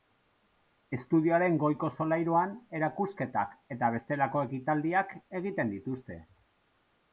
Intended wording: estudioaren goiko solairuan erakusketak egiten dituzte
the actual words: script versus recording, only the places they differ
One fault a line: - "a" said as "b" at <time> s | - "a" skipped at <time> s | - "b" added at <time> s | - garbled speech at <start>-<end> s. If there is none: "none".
- "eta bestelako ekitaldiak" added at 3.8 s